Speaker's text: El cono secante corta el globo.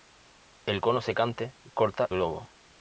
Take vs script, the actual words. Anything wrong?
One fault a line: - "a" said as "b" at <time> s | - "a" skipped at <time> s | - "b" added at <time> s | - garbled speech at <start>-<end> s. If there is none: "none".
- "el" skipped at 2.1 s